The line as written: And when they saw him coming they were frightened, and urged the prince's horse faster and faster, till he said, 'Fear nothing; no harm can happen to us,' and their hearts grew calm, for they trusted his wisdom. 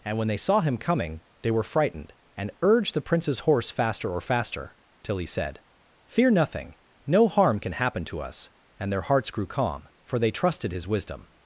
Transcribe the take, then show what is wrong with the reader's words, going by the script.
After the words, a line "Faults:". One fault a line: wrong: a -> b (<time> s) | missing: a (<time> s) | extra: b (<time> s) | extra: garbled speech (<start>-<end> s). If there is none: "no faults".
And when they saw him coming they were frightened, and urged the prince's horse faster or faster, till he said, 'Fear nothing; no harm can happen to us,' and their hearts grew calm, for they trusted his wisdom.
Faults:
wrong: and -> or (4.1 s)